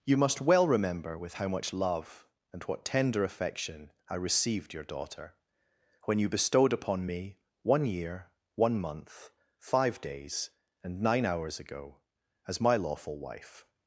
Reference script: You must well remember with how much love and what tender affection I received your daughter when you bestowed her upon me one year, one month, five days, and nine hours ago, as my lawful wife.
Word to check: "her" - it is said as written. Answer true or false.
false